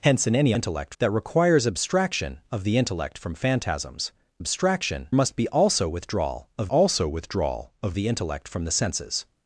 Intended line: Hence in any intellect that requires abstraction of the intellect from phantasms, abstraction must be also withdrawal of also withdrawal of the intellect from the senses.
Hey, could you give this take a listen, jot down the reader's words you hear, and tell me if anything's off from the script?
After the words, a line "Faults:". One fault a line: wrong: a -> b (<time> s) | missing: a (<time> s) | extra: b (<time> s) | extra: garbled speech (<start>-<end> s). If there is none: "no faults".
Hence in any intellect that requires abstraction of the intellect from phantasms, abstraction must be also withdrawal of also withdrawal of the intellect from the senses.
Faults:
no faults